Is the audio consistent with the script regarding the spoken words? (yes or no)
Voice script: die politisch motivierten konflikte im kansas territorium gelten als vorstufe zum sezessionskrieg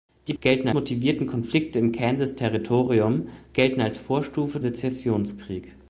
no